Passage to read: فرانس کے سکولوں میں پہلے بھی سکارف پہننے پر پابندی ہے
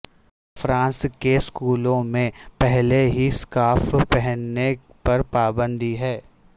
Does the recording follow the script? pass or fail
fail